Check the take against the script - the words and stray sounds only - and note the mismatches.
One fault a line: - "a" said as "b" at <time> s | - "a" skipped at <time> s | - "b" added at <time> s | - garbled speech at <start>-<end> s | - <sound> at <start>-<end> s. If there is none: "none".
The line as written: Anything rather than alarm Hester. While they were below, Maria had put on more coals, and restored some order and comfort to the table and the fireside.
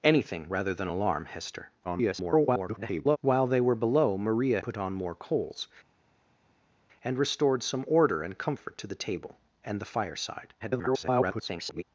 - garbled speech at 1.8-3.2 s
- "had" skipped at 4.6 s
- garbled speech at 10.6-11.8 s